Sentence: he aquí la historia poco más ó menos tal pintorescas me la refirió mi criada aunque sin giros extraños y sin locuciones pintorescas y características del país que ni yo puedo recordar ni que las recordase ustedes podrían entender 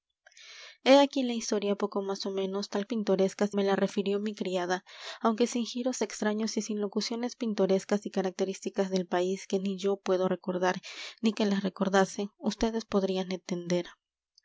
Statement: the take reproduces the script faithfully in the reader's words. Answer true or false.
true